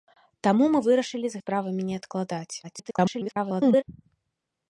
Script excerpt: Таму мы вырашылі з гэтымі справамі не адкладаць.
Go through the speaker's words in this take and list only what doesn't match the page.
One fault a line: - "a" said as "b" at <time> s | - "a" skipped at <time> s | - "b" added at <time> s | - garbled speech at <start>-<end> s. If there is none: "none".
- "гэтымі" skipped at 1.4 s
- garbled speech at 2.6-3.8 s